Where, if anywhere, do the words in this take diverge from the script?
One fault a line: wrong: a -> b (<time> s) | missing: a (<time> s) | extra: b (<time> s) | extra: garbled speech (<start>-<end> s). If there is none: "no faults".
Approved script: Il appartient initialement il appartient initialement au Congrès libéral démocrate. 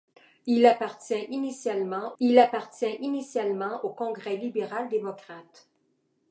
no faults